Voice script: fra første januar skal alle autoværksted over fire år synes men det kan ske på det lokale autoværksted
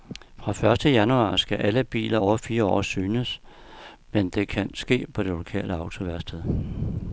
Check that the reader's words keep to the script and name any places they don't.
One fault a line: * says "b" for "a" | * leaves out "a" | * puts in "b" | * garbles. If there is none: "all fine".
* says "biler" for "autoværksted"